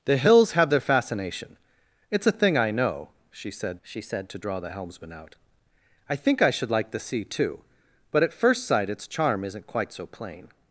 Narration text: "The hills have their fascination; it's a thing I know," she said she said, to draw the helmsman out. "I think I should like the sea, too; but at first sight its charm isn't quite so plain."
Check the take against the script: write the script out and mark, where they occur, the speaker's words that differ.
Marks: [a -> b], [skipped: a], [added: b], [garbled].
"The hills have their fascination; it's a thing I know," she said she said, to draw the helmsman out. "I think I should like the sea, too; but at first sight its charm isn't quite so plain."